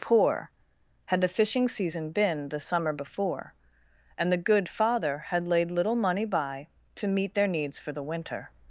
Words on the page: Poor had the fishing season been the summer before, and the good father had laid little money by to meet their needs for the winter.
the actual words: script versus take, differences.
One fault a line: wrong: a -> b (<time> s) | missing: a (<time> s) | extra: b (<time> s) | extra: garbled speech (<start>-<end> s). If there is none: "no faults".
no faults